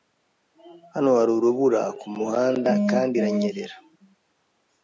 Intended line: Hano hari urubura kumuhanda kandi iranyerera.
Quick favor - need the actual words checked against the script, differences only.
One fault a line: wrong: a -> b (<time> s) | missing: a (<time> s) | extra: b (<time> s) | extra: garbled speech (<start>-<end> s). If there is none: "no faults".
no faults